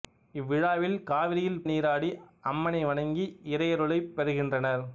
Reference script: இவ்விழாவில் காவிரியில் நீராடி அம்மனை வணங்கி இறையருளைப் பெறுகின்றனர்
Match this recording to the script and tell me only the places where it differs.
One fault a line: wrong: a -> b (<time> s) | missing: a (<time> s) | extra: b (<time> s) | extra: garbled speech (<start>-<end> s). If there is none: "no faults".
no faults